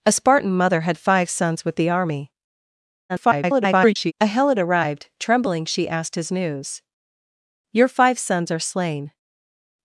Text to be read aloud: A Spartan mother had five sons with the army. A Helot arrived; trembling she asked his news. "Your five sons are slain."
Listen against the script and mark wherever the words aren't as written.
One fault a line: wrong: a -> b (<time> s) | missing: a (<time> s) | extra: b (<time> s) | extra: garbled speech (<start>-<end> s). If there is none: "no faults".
extra: garbled speech (3.1-4.1 s)